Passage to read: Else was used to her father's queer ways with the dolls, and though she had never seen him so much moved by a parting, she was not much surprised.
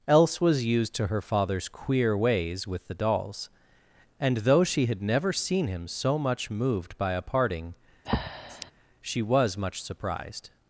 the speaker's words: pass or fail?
fail